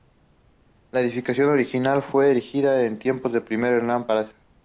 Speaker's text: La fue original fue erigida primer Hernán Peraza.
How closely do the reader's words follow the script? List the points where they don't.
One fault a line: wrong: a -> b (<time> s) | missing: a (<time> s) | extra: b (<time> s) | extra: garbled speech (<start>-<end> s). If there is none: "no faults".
wrong: fue -> edificación (1.0 s)
extra: en tiempos del (2.9 s)